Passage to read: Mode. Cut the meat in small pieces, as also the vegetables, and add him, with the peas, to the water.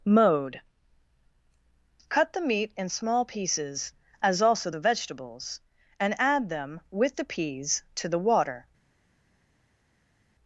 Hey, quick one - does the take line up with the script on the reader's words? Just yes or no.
no